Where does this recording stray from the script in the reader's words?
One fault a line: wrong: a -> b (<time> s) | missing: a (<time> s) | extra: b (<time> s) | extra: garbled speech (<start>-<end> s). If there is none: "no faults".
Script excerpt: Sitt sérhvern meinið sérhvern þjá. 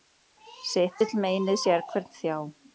wrong: sérhvern -> vill (1.0 s)